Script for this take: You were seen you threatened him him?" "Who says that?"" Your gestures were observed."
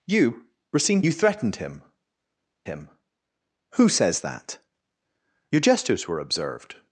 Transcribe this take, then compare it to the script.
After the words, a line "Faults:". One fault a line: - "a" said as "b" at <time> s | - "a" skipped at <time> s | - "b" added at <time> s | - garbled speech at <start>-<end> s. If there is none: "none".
You were seen you threatened him him?" "Who says that?"" Your gestures were observed."
Faults:
none